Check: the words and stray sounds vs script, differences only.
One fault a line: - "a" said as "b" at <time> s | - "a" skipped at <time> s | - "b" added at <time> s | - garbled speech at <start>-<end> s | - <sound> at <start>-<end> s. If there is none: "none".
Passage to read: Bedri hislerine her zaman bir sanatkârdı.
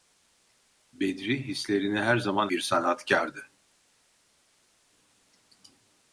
none